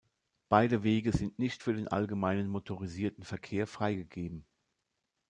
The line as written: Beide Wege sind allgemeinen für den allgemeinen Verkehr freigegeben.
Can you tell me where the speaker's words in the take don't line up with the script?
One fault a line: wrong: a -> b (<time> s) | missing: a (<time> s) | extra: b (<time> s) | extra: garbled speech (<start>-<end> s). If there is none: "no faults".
wrong: allgemeinen -> nicht (1.4 s)
extra: motorisierten (2.5 s)